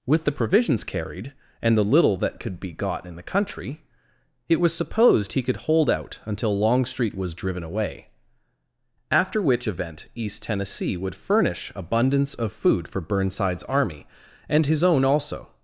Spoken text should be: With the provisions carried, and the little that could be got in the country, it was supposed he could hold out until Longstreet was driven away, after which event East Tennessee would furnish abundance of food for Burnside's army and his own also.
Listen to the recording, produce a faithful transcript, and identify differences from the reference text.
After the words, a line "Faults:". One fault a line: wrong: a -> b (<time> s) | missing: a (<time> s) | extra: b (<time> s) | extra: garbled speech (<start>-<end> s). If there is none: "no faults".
With the provisions carried, and the little that could be got in the country, it was supposed he could hold out until Longstreet was driven away, after which event East Tennessee would furnish abundance of food for Burnside's army and his own also.
Faults:
no faults